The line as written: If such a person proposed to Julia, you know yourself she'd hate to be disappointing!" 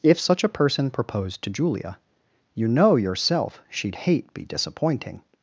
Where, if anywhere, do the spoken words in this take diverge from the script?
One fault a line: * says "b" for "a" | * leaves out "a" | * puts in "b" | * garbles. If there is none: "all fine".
* leaves out "to"